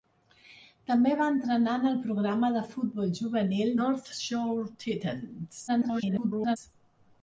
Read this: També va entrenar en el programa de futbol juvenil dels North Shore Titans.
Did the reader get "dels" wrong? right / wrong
wrong